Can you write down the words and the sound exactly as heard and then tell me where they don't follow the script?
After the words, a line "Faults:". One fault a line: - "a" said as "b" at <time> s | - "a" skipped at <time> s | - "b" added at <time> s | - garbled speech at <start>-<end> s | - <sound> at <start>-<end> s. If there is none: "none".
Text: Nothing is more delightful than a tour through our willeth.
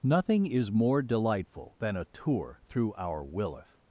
Nothing is more delightful than a tour through our willeth.
Faults:
none